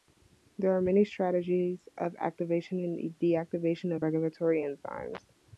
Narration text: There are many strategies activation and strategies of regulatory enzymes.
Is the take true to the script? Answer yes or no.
no